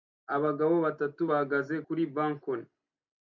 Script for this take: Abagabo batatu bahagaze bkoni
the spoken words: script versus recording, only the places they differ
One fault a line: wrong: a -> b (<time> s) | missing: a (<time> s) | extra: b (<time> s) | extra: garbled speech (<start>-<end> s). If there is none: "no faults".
extra: kuri (1.8 s)